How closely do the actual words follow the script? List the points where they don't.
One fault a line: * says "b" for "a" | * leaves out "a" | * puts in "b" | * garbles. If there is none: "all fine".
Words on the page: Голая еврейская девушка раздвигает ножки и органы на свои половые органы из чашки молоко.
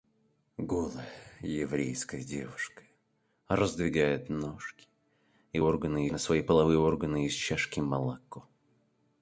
all fine